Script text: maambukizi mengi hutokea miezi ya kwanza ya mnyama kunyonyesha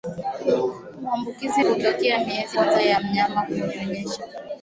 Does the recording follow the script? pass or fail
fail